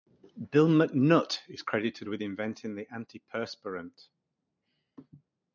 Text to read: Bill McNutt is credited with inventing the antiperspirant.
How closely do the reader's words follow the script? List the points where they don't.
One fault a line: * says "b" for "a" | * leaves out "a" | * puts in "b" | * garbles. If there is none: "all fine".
all fine